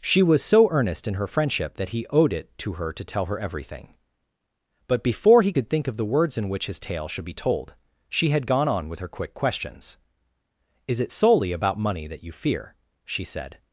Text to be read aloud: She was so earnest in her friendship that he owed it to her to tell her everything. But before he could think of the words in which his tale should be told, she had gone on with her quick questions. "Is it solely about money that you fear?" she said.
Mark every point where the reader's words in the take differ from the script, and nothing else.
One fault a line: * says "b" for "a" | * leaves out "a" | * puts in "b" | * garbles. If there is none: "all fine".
all fine